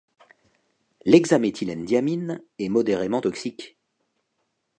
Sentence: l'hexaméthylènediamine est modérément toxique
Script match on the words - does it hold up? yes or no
yes